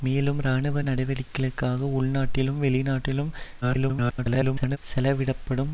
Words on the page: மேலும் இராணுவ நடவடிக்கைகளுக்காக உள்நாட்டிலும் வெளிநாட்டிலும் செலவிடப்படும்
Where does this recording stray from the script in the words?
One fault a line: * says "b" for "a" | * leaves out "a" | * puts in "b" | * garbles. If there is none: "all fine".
* garbles